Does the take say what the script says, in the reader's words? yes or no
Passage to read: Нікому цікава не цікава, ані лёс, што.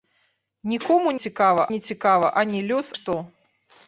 yes